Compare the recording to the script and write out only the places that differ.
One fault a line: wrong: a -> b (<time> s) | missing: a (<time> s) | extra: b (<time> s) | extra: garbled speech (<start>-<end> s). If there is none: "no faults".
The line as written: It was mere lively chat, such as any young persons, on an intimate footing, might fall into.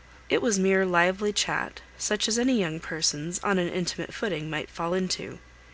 no faults